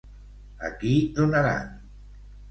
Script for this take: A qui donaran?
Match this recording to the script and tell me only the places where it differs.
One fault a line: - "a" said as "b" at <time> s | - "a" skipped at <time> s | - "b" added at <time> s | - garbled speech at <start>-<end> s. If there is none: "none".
none